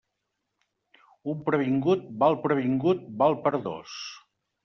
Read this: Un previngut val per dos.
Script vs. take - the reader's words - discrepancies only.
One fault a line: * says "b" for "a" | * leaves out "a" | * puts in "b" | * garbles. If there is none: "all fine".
* puts in "previngut val"